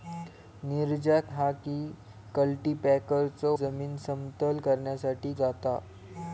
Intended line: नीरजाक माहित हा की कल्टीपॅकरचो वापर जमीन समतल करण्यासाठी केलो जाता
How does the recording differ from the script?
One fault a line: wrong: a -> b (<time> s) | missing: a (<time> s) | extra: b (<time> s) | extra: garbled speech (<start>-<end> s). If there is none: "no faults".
missing: माहित (1.3 s)
missing: वापर (3.6 s)
missing: केलो (5.3 s)